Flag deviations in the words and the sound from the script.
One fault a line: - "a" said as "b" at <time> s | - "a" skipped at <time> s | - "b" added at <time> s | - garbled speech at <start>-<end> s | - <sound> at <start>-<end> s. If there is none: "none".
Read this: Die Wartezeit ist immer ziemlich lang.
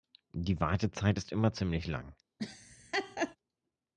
- laugh at 2.4-3.4 s